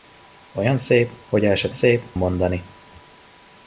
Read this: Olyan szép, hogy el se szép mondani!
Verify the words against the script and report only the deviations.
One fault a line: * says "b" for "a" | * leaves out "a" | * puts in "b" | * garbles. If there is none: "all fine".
all fine